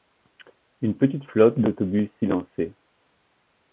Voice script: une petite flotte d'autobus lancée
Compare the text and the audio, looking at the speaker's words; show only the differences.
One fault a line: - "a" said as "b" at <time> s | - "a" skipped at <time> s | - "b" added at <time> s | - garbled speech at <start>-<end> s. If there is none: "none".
none